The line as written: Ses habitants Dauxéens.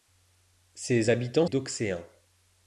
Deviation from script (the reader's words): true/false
false